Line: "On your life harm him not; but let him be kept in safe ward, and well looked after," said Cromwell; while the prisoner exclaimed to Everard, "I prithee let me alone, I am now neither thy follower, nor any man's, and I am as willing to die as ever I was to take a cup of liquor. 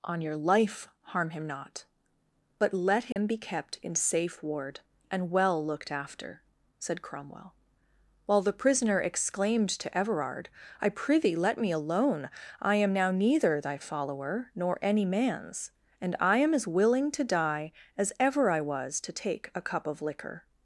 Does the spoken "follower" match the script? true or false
true